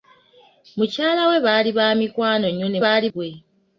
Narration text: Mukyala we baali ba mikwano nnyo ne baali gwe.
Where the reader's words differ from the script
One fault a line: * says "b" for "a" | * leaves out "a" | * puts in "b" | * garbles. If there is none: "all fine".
all fine